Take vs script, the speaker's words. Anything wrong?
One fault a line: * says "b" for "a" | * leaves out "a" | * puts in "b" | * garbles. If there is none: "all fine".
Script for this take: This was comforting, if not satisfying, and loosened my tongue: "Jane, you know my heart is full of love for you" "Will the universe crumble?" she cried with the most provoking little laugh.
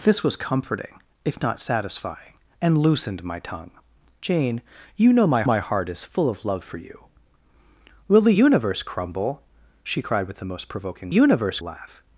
* puts in "my"
* says "universe" for "little"